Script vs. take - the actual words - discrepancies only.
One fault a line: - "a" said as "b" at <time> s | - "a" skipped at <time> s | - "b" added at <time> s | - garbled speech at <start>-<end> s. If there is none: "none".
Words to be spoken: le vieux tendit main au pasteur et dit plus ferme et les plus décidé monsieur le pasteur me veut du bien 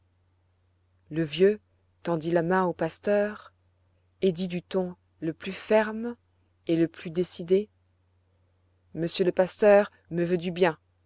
- "la" added at 2.3 s
- "du ton le" added at 4.5 s
- "les" said as "le" at 6.8 s